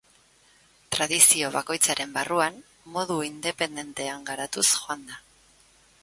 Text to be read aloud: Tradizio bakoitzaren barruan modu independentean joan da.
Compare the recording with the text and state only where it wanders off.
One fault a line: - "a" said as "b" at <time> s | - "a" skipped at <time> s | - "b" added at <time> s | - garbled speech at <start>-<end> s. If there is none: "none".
- "garatuz" added at 4.3 s